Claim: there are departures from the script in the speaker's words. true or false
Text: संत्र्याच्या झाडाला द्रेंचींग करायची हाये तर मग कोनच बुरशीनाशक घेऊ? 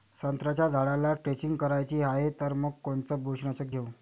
false